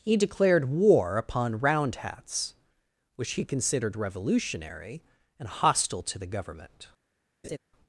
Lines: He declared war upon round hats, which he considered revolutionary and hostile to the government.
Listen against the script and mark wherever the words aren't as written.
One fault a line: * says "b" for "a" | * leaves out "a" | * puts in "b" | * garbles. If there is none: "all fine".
all fine